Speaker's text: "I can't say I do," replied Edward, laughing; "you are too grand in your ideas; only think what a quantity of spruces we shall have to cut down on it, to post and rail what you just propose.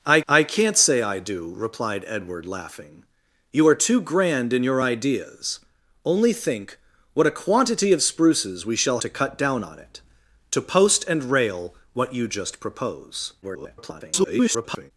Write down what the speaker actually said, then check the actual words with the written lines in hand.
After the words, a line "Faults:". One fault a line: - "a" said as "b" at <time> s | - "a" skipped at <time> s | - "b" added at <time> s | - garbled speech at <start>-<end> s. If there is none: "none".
"I I can't say I do," replied Edward, laughing; "you are too grand in your ideas; only think what a quantity of spruces we shall to cut down on it, to post and rail what you just propose. [garbled]
Faults:
- "I" added at 0.3 s
- "have" skipped at 9.0 s
- garbled speech at 13.4-14.9 s